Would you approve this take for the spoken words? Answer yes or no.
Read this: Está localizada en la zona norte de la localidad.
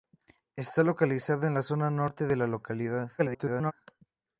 no